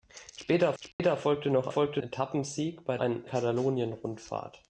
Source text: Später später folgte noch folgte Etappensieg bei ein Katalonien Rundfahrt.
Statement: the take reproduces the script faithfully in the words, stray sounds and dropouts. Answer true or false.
false